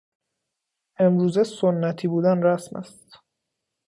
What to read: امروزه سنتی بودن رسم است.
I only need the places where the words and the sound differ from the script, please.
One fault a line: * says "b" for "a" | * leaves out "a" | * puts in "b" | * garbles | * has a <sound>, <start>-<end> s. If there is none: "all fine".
all fine